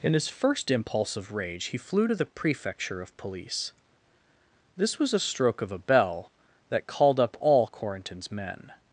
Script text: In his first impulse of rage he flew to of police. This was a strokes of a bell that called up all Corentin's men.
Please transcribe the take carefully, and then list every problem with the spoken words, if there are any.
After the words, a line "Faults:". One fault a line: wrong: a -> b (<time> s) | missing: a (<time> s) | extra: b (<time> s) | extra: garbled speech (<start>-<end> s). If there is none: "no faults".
In his first impulse of rage he flew to the prefecture of police. This was a stroke of a bell that called up all Corentin's men.
Faults:
extra: the prefecture (2.1 s)
wrong: strokes -> stroke (5.2 s)